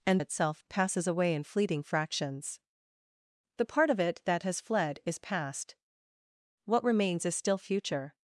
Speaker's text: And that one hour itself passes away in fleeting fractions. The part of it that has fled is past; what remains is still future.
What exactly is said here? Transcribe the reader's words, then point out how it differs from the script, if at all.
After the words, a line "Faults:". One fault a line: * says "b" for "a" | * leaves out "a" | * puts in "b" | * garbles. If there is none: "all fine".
And itself passes away in fleeting fractions. The part of it that has fled is past; what remains is still future.
Faults:
* leaves out "that one hour"